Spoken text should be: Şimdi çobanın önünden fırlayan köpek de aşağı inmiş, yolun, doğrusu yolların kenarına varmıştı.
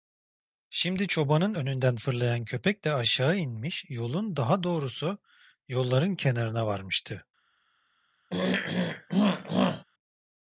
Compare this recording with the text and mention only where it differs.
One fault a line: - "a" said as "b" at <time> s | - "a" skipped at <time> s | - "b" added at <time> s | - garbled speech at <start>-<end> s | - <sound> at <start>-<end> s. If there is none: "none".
- "daha" added at 4.4 s
- throat clearing at 8.3-9.8 s